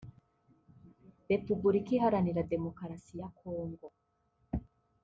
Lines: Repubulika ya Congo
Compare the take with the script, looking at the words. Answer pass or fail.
fail